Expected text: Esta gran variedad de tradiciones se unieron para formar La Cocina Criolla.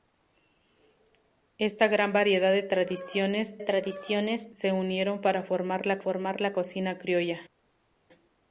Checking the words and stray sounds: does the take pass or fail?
fail